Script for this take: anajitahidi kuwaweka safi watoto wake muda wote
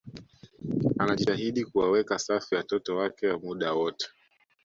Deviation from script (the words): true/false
false